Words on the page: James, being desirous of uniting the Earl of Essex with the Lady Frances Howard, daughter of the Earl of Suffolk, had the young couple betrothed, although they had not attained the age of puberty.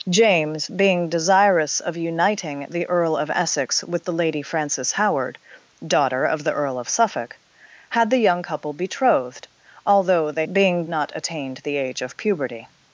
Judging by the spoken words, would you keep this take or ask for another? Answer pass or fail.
fail